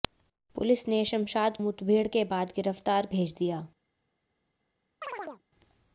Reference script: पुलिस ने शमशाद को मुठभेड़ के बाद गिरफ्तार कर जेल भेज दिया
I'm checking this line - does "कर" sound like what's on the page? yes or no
no